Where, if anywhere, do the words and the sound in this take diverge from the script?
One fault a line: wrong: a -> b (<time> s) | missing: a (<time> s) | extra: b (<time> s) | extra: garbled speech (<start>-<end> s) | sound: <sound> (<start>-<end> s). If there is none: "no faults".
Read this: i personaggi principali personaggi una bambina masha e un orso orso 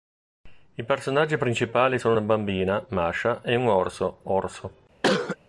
wrong: personaggi -> sono (2.0 s)
sound: cough (5.0-5.4 s)